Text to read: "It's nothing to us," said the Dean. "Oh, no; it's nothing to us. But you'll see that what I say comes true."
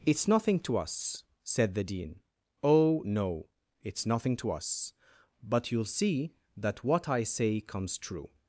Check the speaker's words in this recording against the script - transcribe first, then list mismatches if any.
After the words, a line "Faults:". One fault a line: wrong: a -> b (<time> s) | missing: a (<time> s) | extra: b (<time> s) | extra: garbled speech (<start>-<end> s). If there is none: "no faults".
"It's nothing to us," said the Dean. "Oh, no; it's nothing to us. But you'll see that what I say comes true."
Faults:
no faults